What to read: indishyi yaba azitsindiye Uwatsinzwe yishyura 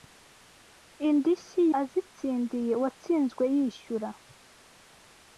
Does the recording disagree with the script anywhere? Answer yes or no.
yes